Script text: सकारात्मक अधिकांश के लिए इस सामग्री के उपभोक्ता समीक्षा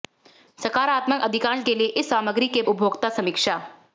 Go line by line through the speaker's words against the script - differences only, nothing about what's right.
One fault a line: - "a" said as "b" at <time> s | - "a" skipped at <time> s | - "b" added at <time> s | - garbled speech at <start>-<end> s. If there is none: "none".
none